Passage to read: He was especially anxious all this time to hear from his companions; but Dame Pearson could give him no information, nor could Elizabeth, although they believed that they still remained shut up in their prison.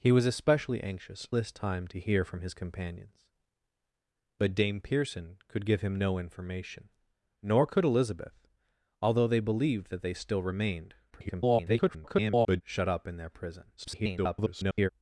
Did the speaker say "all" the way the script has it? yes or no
no